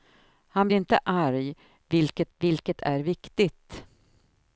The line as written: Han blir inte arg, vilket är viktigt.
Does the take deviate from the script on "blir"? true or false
true